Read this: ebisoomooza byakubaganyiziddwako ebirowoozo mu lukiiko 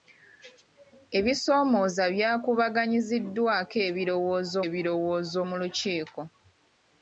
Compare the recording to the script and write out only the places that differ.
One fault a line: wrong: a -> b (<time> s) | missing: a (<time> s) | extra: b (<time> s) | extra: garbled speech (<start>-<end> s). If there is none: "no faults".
extra: ebirowoozo (4.7 s)